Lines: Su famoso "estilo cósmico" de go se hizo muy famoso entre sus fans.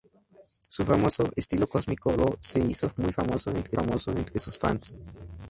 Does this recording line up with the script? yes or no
no